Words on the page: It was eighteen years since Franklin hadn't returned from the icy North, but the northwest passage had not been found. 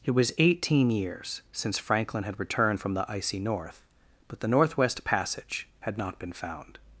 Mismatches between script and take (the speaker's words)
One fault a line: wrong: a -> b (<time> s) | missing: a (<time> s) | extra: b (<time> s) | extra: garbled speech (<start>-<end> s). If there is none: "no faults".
wrong: hadn't -> had (2.2 s)